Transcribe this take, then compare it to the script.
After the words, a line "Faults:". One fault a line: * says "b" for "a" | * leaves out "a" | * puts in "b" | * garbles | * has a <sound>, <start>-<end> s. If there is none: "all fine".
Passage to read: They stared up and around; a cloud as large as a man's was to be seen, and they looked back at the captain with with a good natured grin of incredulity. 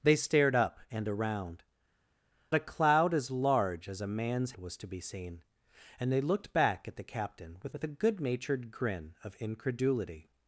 They stared up and around; a cloud as large as a man's was to be seen, and they looked back at the captain with with a good natured grin of incredulity.
Faults:
all fine